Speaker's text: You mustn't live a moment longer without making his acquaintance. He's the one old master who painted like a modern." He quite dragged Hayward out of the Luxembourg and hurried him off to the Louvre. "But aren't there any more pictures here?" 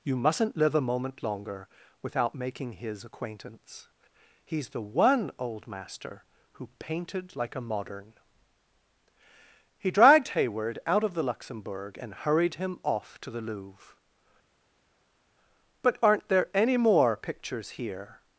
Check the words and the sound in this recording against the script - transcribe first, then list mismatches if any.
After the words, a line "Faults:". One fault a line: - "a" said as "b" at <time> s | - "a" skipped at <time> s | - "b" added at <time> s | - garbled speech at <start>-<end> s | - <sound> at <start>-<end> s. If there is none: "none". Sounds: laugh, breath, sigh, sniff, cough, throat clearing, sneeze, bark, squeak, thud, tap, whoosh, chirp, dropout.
You mustn't live a moment longer without making his acquaintance. He's the one old master who painted like a modern." He dragged Hayward out of the Luxembourg and hurried him off to the Louvre. "But aren't there any more pictures here?"
Faults:
- "quite" skipped at 9.9 s